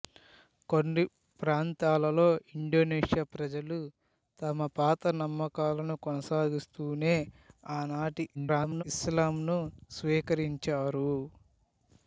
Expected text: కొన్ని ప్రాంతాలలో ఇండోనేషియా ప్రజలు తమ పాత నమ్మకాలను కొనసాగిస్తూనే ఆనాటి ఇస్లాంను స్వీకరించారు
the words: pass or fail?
fail